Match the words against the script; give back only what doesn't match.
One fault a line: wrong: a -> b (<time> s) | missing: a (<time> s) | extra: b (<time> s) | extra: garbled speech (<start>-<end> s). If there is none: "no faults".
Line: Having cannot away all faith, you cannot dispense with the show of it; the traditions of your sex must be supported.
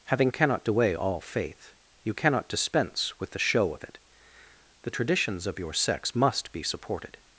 no faults